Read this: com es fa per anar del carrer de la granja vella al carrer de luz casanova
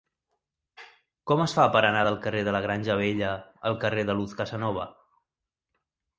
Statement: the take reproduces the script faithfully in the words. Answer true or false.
true